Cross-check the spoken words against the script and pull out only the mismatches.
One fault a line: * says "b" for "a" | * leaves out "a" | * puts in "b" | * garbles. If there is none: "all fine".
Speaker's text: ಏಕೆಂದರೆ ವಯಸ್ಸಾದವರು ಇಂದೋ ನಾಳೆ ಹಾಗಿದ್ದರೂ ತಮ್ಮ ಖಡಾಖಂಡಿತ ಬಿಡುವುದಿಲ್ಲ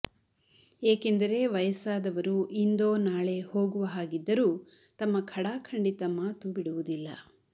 * puts in "ಹೋಗುವ"
* puts in "ಮಾತು"